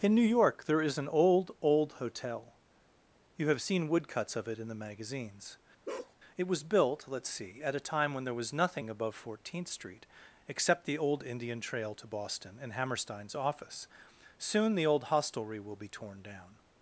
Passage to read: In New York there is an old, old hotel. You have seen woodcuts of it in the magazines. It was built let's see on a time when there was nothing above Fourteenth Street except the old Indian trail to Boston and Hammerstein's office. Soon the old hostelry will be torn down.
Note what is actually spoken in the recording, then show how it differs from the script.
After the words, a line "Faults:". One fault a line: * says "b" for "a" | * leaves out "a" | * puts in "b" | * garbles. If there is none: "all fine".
In New York there is an old, old hotel. You have seen woodcuts of it in the magazines. It was built let's see at a time when there was nothing above Fourteenth Street except the old Indian trail to Boston and Hammerstein's office. Soon the old hostelry will be torn down.
Faults:
* says "at" for "on"